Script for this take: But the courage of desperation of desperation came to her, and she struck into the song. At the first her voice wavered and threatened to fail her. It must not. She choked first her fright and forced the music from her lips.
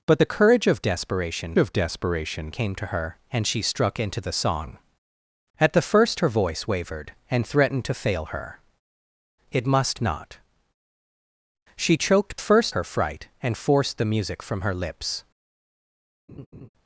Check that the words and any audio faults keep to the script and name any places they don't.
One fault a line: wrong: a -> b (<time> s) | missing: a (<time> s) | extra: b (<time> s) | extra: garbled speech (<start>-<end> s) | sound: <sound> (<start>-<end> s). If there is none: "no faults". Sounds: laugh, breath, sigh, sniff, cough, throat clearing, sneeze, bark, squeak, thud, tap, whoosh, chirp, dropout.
sound: laugh (16.3-16.7 s)